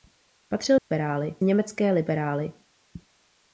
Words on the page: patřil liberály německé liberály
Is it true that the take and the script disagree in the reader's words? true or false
false